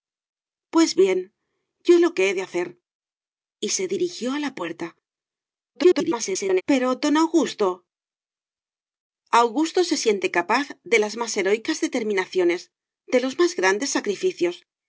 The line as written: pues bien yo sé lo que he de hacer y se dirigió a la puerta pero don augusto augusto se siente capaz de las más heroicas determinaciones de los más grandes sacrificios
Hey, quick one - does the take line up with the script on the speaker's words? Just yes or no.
no